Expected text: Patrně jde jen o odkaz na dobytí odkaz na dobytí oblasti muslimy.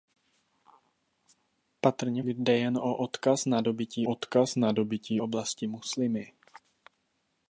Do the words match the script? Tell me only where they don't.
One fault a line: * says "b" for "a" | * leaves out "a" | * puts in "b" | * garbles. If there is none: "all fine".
all fine